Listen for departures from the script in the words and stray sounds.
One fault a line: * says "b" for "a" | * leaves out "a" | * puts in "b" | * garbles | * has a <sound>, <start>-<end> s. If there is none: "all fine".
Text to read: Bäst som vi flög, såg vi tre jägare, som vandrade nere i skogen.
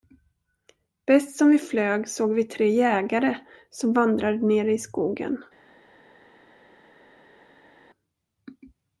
all fine